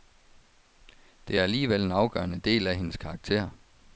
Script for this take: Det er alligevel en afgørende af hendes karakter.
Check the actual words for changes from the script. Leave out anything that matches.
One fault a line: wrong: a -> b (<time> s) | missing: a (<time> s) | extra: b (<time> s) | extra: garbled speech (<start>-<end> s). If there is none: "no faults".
extra: del (2.4 s)